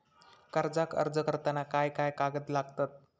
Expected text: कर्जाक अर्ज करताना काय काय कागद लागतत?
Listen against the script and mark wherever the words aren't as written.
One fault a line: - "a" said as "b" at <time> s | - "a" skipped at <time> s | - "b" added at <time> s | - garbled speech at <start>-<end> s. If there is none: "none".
none